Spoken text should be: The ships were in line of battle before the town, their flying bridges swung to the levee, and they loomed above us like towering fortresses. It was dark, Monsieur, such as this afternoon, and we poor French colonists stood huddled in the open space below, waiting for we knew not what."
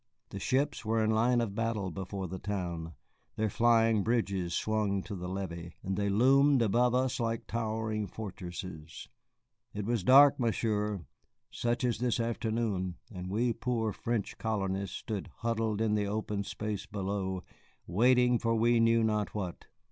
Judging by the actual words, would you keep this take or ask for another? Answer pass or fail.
pass